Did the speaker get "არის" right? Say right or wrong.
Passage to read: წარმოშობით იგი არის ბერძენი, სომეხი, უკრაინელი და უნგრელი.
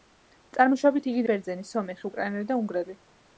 wrong